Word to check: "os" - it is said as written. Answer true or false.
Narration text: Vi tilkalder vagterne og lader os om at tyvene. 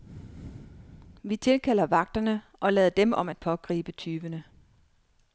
false